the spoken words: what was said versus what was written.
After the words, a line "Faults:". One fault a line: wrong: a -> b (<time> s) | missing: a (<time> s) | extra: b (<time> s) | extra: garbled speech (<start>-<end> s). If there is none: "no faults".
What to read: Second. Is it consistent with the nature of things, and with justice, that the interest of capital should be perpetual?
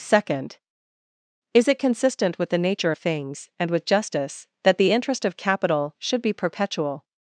Second. Is it consistent with the nature of things, and with justice, that the interest of capital should be perpetual?
Faults:
no faults